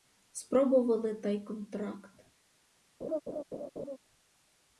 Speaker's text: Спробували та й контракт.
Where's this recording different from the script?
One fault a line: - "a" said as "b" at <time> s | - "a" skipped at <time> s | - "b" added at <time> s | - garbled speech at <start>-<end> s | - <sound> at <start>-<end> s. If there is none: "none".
- laugh at 3.0-4.0 s